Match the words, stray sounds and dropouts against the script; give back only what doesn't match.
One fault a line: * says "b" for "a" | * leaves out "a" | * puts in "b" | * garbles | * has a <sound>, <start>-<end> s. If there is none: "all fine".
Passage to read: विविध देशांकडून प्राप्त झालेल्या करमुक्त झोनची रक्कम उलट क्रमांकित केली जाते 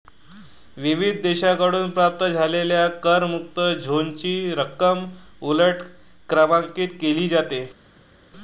all fine